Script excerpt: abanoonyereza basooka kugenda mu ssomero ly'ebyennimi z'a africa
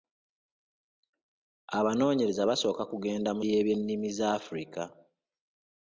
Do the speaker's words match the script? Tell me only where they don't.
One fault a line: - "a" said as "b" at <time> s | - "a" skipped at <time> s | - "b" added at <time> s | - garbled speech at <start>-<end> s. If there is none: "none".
- "ssomero" skipped at 3.4 s